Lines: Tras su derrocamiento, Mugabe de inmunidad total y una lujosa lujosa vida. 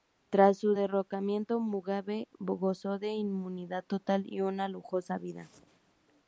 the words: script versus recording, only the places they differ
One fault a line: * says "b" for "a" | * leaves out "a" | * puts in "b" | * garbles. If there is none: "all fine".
* puts in "gozó"
* leaves out "lujosa"